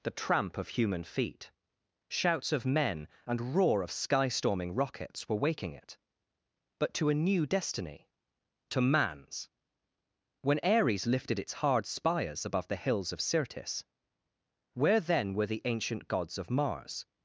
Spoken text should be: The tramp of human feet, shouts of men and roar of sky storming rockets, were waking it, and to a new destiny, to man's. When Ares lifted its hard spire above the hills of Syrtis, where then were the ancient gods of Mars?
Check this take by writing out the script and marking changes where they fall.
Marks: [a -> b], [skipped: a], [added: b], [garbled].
The tramp of human feet, shouts of men and roar of sky storming rockets, were waking it, [and -> but] to a new destiny, to man's. When Ares lifted its hard [spire -> spires] above the hills of Syrtis, where then were the ancient gods of Mars?